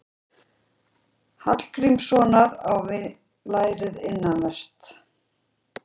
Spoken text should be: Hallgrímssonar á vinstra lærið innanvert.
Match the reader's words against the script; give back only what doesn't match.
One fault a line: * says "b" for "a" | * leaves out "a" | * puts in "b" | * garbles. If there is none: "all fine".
* leaves out "vinstra"